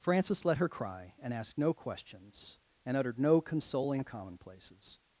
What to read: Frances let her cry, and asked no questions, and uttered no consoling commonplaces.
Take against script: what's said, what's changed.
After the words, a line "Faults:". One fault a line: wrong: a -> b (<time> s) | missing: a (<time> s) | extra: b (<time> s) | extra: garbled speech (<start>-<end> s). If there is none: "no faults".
Frances let her cry, and asked no questions, and uttered no consoling commonplaces.
Faults:
no faults